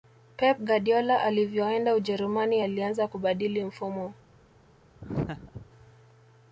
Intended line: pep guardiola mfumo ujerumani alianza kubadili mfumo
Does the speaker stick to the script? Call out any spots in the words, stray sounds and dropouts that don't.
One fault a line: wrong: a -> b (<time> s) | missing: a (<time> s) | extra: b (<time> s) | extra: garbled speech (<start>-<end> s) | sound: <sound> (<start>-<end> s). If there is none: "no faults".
wrong: mfumo -> alivyoenda (1.2 s)
sound: laugh (5.0-5.7 s)